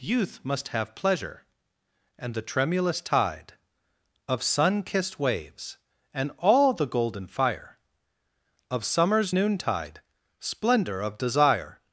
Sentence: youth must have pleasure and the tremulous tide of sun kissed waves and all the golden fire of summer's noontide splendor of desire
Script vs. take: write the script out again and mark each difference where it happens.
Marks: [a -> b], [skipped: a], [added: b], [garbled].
youth must have pleasure and the tremulous tide of sun kissed waves and all the golden fire of summer's noontide splendor of desire